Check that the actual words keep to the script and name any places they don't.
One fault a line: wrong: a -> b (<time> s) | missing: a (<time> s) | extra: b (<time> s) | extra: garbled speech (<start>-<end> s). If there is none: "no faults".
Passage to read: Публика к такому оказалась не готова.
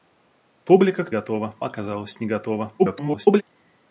wrong: такому -> готова (1.1 s)
extra: garbled speech (2.8-3.4 s)